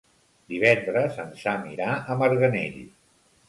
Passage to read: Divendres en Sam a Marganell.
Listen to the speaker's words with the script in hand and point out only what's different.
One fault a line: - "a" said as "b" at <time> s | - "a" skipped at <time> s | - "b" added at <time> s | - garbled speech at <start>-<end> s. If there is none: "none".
- "irà" added at 1.7 s